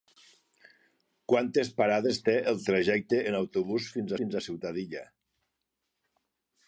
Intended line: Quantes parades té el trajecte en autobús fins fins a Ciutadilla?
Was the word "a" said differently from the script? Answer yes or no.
no